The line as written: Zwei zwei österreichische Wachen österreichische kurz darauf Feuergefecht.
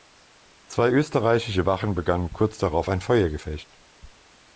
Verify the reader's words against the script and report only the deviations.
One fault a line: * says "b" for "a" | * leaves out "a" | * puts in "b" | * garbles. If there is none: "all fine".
* leaves out "zwei"
* says "begannen" for "österreichische"
* puts in "ein"